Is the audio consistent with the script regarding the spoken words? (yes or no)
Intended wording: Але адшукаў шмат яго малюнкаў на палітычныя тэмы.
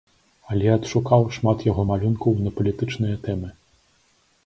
yes